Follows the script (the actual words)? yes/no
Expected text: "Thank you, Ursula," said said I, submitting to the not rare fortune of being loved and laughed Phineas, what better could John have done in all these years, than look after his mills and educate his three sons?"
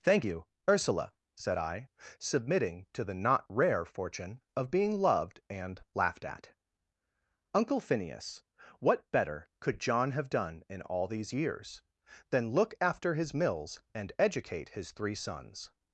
no